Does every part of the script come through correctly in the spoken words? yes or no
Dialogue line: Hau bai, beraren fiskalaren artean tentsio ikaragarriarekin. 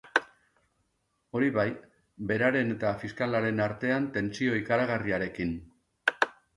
no